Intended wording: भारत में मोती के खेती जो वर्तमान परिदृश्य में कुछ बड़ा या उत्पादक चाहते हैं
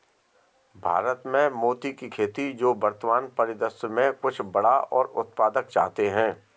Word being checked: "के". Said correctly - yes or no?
no